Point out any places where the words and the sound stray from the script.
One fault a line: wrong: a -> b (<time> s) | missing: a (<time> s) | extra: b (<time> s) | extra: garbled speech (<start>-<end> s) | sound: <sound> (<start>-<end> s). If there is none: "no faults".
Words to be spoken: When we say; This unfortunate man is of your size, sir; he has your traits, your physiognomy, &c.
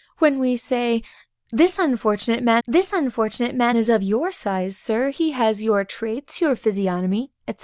extra: This unfortunate man (2.7 s)